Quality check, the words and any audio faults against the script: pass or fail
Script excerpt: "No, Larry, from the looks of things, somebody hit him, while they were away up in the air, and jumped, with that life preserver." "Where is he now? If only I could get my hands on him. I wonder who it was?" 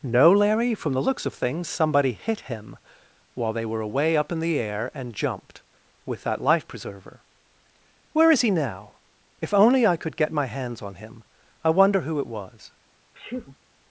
fail